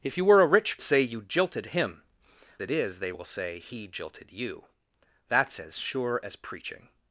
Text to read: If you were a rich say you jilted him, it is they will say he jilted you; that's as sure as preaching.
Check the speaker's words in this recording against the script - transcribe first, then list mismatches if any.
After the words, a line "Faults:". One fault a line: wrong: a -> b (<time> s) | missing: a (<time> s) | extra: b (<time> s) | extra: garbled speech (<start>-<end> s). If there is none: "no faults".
If you were a rich say you jilted him, it is they will say he jilted you; that's as sure as preaching.
Faults:
no faults